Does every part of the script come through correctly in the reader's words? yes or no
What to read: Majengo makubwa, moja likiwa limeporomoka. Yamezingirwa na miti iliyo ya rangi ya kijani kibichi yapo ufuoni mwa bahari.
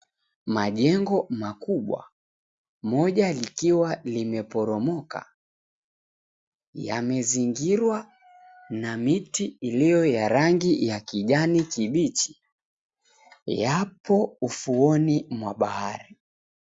yes